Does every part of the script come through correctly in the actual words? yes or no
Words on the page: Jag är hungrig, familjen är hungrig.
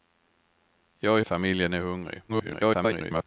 no